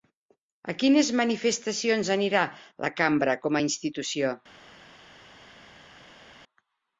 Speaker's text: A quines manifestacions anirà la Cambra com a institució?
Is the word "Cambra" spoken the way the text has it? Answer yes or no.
yes